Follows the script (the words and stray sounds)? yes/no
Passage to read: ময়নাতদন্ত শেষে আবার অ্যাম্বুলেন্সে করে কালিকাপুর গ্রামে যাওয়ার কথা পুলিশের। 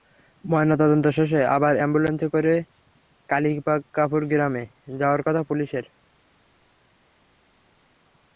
yes